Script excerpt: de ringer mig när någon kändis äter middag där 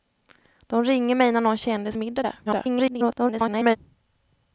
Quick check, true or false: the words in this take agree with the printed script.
false